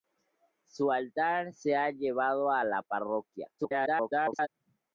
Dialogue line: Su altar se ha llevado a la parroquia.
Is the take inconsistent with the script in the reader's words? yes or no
yes